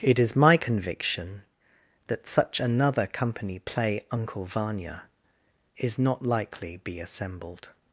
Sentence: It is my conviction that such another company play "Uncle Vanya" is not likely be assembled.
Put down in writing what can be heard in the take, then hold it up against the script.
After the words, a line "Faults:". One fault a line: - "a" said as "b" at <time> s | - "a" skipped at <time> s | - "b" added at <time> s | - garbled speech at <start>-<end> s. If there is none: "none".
It is my conviction that such another company play "Uncle Vanya" is not likely be assembled.
Faults:
none